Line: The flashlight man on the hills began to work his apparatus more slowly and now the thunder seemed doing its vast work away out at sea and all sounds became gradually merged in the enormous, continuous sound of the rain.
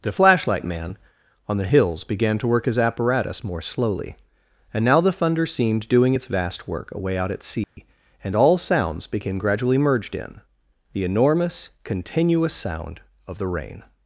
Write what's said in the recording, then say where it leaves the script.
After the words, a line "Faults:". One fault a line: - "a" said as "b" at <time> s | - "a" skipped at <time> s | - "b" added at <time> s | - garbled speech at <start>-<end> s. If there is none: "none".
The flashlight man on the hills began to work his apparatus more slowly and now the thunder seemed doing its vast work away out at sea and all sounds became gradually merged in the enormous, continuous sound of the rain.
Faults:
none